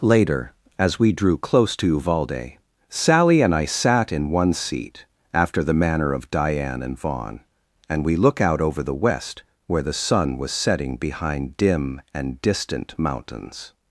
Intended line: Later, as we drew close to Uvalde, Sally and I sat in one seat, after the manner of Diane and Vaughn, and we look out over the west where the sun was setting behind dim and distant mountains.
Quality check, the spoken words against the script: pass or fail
pass